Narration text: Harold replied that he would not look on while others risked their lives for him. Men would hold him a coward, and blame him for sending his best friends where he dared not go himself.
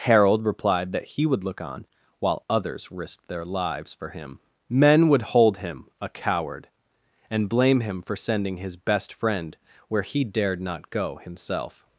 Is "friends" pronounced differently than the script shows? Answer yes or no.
yes